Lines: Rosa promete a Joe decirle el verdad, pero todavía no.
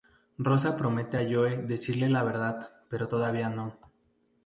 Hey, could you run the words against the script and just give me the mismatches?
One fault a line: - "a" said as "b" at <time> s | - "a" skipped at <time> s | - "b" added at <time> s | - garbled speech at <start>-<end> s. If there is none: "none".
- "el" said as "la" at 2.1 s